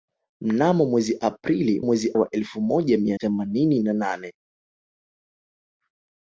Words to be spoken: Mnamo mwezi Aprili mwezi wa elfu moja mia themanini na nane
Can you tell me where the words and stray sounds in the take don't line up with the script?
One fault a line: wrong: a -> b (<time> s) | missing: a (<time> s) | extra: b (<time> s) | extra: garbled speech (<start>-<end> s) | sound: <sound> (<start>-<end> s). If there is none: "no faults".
no faults